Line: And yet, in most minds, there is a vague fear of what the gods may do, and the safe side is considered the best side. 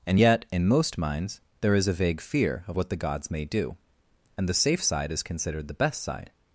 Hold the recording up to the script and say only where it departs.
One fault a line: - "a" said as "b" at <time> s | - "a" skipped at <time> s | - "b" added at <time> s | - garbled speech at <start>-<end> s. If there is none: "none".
none